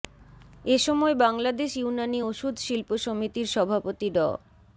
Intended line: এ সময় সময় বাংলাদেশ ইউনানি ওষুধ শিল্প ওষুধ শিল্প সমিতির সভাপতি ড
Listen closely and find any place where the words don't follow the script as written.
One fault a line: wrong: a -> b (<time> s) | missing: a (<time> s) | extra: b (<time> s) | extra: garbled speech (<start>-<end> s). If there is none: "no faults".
missing: সময় (1.1 s)
missing: ওষুধ শিল্প (2.9 s)